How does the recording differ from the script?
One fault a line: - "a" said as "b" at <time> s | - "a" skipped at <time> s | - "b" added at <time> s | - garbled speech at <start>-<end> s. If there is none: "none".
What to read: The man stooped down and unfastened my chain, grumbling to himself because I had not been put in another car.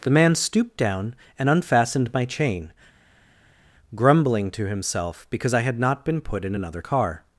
none